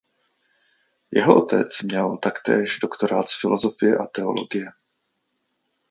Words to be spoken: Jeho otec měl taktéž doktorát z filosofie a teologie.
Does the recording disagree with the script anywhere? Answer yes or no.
no